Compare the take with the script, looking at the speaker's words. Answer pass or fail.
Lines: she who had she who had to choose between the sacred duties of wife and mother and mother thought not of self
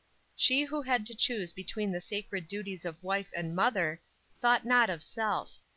fail